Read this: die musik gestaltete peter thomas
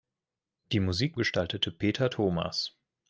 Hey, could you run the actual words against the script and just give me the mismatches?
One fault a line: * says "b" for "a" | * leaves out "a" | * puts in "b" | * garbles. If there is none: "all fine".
all fine